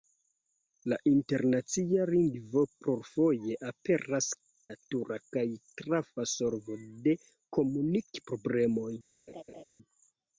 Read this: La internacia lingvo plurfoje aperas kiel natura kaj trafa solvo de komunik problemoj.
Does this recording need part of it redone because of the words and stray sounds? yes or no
yes